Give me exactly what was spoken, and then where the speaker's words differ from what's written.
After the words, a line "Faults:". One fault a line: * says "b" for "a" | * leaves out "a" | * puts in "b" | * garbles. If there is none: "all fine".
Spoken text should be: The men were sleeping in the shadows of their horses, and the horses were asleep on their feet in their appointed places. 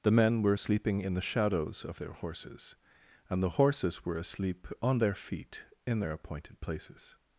The men were sleeping in the shadows of their horses, and the horses were asleep on their feet in their appointed places.
Faults:
all fine